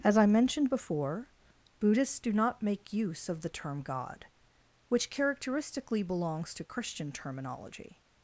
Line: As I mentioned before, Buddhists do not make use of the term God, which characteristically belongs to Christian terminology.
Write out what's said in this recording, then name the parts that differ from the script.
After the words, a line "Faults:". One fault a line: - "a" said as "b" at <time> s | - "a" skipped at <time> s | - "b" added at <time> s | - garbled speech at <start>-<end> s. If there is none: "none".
As I mentioned before, Buddhists do not make use of the term God, which characteristically belongs to Christian terminology.
Faults:
none